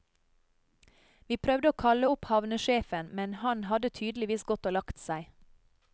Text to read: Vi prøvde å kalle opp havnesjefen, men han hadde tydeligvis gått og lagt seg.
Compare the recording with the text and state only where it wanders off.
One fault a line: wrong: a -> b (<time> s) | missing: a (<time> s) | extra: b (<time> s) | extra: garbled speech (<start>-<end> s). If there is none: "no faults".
no faults